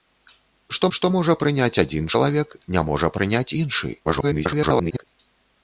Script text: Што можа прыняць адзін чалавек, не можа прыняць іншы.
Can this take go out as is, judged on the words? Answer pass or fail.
fail